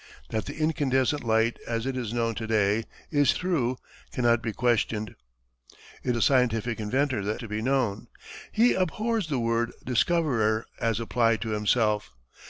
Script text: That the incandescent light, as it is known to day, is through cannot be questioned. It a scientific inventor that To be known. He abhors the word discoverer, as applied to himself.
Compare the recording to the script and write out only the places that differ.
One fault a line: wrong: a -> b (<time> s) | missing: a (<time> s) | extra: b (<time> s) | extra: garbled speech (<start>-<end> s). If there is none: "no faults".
no faults